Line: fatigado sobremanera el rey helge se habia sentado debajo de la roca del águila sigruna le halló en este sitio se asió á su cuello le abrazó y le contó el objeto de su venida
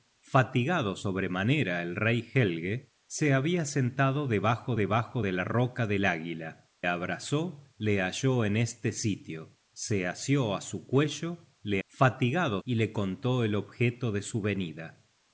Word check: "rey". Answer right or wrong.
right